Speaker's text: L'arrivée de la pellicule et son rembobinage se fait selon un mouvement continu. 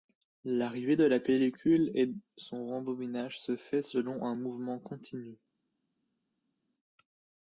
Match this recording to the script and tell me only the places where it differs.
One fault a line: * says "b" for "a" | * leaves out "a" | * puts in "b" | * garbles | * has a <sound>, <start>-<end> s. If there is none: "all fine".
all fine